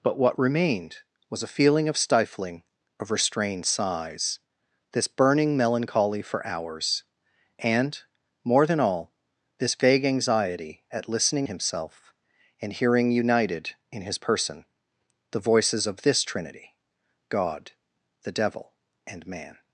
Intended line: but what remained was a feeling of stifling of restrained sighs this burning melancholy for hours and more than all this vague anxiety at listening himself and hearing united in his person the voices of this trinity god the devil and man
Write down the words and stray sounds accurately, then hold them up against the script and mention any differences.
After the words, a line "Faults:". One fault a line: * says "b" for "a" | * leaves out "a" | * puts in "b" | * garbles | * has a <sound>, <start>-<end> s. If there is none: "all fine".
but what remained was a feeling of stifling of restrained sighs this burning melancholy for hours and more than all this vague anxiety at listening himself and hearing united in his person the voices of this trinity god the devil and man
Faults:
all fine